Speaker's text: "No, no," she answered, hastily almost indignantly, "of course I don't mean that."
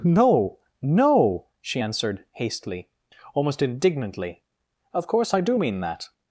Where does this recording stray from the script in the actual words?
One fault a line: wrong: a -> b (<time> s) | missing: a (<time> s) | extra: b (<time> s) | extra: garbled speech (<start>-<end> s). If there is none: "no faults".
wrong: don't -> do (5.4 s)